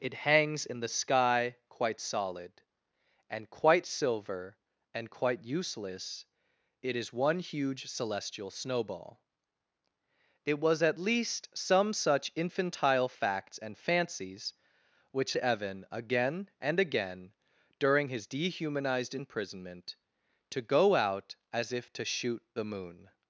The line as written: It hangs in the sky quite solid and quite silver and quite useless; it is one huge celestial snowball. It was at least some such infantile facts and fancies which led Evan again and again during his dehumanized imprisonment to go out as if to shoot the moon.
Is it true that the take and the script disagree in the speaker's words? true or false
true